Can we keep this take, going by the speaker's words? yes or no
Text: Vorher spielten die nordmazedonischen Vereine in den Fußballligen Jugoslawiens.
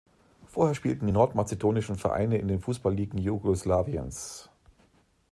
yes